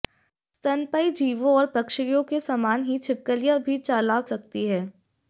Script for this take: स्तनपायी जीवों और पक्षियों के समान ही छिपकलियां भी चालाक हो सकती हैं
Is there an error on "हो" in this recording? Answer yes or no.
yes